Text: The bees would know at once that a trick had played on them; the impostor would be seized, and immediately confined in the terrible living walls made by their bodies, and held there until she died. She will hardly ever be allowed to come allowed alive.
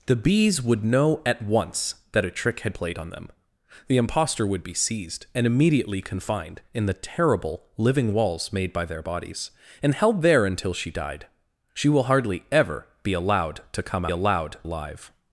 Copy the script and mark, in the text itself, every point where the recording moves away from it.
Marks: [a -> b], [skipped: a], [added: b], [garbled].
The bees would know at once that a trick had played on them; the impostor would be seized, and immediately confined in the terrible living walls made by their bodies, and held there until she died. She will hardly ever be allowed to come allowed alive.